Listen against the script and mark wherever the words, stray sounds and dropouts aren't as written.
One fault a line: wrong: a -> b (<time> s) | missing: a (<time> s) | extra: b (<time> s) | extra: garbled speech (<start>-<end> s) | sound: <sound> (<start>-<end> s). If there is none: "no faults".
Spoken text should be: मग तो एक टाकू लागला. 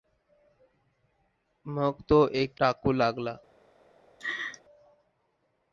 sound: laugh (4.2-4.6 s)